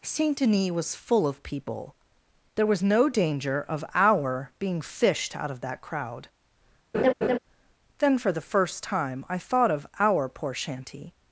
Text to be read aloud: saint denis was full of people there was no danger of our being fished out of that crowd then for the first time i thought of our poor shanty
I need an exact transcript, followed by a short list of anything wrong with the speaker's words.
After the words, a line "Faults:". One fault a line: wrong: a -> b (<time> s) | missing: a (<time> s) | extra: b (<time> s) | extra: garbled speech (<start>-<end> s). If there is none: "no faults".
saint denis was full of people there was no danger of our being fished out of that crowd then for the first time i thought of our poor shanty
Faults:
no faults